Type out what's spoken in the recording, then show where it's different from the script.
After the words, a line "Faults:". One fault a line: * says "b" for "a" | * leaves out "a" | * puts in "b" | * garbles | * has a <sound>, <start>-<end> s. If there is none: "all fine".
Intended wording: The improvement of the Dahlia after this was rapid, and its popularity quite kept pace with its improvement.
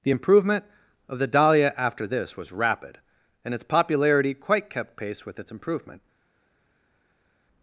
The improvement of the Dahlia after this was rapid, and its popularity quite kept pace with its improvement.
Faults:
all fine